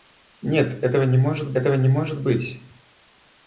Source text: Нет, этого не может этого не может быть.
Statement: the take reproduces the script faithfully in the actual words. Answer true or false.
true